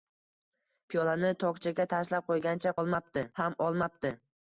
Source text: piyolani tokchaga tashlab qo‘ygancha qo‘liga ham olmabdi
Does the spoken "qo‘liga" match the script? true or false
false